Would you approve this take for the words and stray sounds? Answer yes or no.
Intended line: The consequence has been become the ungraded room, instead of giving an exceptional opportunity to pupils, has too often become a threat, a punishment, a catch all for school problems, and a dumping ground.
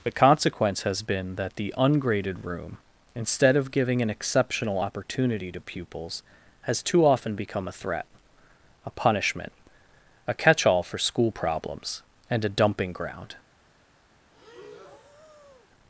no